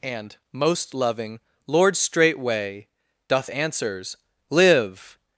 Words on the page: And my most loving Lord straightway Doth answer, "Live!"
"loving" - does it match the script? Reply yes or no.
yes